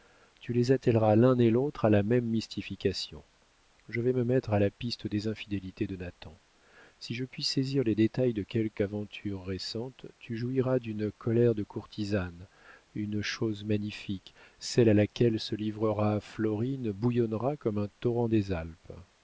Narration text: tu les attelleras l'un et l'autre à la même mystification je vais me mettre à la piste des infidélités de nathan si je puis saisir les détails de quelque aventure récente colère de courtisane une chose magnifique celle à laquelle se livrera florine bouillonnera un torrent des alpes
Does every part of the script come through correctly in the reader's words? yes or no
no